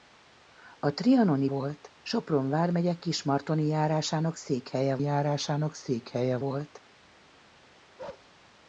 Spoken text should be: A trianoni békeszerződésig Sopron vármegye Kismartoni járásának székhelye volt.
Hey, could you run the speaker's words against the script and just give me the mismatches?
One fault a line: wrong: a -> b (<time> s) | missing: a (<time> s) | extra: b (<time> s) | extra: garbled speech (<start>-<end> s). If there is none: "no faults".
wrong: békeszerződésig -> volt (1.4 s)
extra: járásának székhelye (5.0 s)